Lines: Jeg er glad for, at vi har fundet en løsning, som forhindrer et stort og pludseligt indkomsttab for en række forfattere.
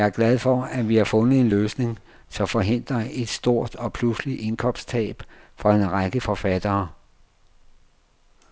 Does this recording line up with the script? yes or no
yes